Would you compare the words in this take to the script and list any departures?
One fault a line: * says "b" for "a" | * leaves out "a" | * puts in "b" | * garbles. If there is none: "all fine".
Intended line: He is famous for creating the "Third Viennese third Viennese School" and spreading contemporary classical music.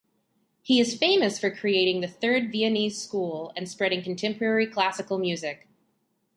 * leaves out "third Viennese"